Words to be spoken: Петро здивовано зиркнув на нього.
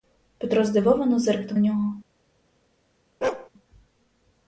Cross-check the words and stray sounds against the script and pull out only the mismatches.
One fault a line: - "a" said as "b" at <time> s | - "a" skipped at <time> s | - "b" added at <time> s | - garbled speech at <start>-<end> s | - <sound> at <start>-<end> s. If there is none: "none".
- "на" skipped at 1.6 s
- bark at 3.2-3.5 s